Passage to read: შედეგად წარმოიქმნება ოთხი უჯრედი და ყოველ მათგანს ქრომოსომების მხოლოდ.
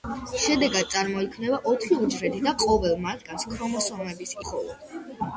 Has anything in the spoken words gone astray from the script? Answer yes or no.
no